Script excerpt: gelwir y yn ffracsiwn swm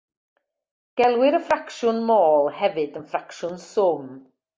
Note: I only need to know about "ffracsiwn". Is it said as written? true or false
true